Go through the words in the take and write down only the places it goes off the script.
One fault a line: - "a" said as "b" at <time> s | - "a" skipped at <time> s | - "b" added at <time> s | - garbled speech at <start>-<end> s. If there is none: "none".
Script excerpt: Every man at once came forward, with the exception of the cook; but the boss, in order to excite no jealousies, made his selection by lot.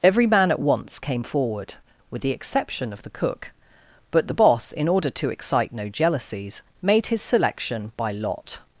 none